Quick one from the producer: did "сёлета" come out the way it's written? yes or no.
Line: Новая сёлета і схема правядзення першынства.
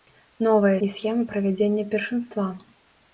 no